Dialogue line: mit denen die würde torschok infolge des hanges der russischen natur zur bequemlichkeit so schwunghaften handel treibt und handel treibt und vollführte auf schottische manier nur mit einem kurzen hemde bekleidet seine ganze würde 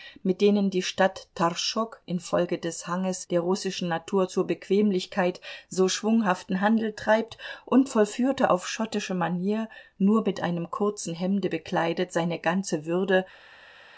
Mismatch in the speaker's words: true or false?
true